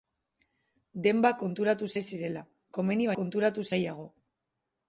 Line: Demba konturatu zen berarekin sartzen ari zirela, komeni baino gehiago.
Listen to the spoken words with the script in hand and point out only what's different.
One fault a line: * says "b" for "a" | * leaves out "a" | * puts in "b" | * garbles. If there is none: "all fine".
* leaves out "zen berarekin sartzen"
* says "konturatu" for "baino"